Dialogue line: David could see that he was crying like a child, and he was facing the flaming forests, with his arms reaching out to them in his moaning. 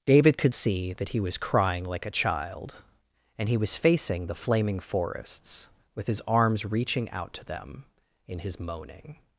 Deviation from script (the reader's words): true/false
false